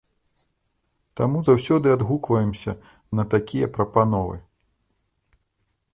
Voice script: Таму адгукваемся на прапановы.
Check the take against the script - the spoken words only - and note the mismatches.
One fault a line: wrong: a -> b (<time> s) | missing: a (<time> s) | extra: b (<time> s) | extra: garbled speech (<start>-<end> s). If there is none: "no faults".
extra: заўсёды (1.5 s)
extra: такія (3.4 s)